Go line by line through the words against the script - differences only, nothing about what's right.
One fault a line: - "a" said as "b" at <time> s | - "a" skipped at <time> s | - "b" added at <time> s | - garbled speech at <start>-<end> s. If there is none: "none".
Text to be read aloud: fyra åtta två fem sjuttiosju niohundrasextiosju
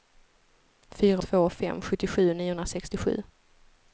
- "åtta" skipped at 1.2 s